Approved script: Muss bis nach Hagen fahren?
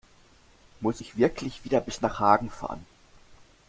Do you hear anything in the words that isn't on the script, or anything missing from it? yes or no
yes